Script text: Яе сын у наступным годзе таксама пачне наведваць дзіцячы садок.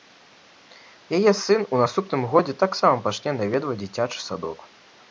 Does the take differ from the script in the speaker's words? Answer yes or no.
no